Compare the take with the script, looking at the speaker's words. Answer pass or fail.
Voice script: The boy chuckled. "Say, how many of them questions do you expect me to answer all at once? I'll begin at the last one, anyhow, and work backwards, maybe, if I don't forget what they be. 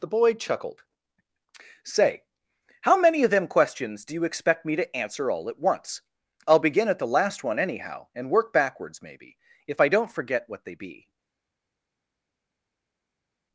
pass